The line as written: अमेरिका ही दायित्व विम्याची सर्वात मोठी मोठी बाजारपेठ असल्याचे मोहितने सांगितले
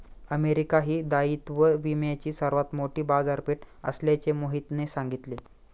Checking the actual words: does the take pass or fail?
fail